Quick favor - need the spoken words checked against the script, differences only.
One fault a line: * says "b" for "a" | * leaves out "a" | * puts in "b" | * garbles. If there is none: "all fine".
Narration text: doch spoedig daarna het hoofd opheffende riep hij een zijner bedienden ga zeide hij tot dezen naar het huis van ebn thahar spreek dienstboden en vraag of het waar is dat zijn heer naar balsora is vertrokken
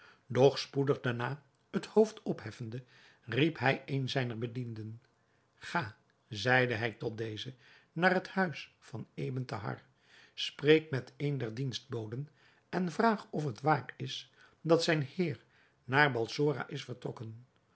* puts in "met een der"